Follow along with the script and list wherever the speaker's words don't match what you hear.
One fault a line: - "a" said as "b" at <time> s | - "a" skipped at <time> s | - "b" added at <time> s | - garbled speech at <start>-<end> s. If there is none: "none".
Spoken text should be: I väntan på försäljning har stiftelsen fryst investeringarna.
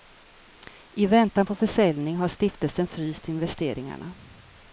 none